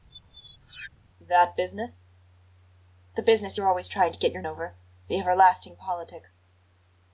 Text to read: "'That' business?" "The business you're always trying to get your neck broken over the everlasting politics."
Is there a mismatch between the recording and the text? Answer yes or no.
yes